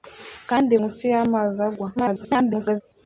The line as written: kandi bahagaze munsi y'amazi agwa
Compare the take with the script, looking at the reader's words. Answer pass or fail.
fail